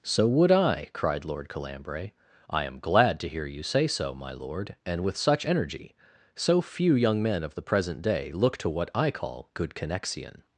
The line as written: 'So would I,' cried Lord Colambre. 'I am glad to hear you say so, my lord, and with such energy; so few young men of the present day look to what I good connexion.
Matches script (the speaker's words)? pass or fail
fail